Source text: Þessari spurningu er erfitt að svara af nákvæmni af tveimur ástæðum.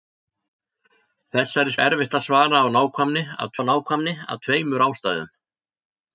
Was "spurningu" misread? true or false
true